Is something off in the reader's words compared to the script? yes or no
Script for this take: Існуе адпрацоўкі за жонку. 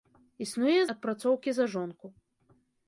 no